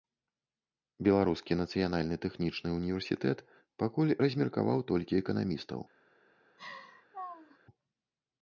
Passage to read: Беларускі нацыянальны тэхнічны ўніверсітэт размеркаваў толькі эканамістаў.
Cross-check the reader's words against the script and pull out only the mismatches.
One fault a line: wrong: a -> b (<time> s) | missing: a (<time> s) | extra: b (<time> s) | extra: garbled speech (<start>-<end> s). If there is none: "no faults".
extra: пакуль (3.8 s)